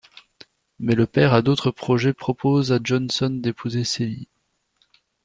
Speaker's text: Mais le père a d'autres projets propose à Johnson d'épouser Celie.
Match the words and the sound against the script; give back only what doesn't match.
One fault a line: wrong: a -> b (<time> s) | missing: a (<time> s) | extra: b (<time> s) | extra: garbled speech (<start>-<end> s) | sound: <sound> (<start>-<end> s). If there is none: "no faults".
no faults